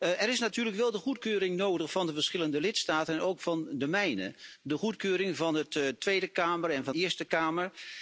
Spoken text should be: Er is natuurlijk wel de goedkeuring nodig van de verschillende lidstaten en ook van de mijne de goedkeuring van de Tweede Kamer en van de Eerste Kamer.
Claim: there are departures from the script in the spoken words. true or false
true